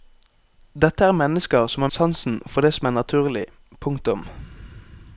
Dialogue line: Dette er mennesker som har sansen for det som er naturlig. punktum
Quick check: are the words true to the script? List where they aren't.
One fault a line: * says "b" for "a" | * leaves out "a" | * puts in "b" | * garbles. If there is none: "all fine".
all fine